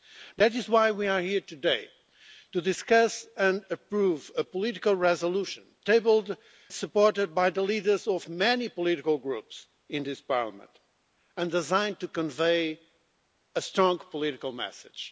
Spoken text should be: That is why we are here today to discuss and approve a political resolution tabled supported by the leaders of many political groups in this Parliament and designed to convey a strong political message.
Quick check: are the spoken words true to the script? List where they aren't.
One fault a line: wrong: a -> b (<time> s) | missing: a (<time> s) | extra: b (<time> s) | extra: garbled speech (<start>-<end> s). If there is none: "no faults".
no faults